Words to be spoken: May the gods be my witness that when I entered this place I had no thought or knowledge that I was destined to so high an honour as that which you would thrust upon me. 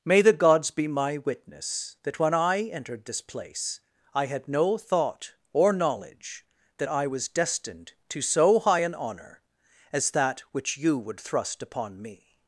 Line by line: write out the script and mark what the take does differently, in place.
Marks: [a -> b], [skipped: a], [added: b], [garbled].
May the gods be my witness that when I entered this place I had no thought or knowledge that I was destined to so high an honour as that which you would thrust upon me.